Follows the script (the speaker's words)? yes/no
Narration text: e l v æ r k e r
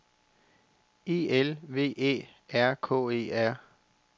yes